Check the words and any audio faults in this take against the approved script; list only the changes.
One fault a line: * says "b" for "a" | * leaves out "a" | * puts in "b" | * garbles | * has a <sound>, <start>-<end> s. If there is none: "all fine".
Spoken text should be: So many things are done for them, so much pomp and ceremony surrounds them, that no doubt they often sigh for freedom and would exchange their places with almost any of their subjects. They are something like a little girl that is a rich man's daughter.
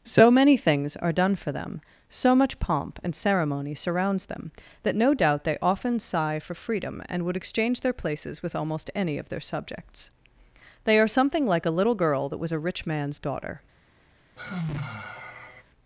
* says "was" for "is"
* has a sigh, 14.4-15.6 s